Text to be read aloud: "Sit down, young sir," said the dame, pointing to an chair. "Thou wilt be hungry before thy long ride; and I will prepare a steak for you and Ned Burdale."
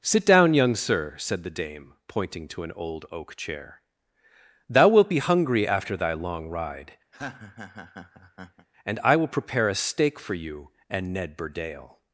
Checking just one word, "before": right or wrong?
wrong